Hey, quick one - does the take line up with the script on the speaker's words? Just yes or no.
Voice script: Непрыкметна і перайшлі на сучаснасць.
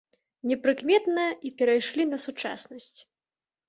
yes